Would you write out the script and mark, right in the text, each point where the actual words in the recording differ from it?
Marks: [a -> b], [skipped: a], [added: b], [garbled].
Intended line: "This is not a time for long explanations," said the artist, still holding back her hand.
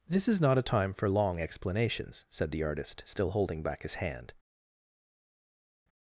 "This is not a time for long explanations," said the artist, still holding back [her -> his] hand.